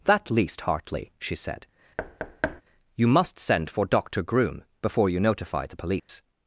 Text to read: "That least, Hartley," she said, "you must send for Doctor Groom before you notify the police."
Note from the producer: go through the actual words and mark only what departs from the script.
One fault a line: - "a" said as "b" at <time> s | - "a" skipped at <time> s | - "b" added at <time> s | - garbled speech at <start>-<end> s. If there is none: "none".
none